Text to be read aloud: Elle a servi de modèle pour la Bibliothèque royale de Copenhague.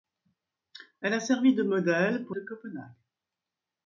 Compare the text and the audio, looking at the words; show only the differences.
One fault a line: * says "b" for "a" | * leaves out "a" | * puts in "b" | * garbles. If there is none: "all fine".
* leaves out "la Bibliothèque royale"